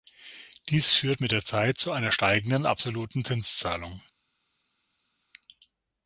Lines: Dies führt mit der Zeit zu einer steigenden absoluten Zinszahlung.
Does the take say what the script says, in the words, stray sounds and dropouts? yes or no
yes